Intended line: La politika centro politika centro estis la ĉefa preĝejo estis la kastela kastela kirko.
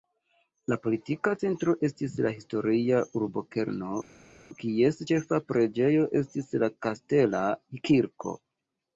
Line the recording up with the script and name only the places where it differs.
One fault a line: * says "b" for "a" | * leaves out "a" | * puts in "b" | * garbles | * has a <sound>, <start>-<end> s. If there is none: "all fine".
* says "estis la historia urbokerno kies" for "politika centro estis la"
* leaves out "kastela"